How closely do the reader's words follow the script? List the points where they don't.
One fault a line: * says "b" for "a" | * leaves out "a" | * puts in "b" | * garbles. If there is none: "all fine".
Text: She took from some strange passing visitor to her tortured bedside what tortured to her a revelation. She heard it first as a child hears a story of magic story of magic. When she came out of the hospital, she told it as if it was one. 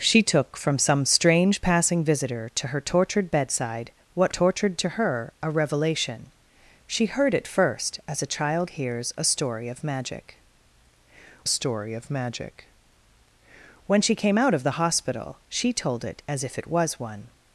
all fine